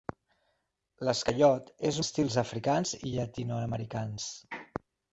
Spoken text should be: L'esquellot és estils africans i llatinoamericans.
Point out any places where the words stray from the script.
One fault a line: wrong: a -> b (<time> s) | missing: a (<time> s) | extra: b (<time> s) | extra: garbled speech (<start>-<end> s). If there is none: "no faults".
no faults